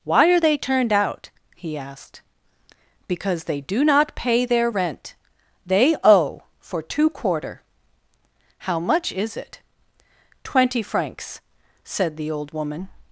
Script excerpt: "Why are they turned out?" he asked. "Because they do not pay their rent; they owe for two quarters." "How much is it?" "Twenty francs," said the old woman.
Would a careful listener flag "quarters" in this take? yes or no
yes